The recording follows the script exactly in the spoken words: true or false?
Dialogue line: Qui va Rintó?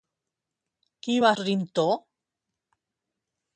true